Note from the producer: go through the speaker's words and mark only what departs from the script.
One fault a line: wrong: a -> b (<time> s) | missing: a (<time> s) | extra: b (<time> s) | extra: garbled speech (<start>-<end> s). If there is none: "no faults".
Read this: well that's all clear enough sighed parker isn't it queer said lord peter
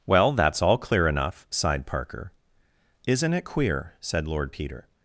no faults